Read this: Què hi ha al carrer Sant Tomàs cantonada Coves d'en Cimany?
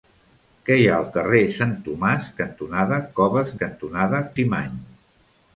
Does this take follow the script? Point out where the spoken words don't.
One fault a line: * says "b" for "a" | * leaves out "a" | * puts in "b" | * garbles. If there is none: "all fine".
* says "cantonada" for "d'en"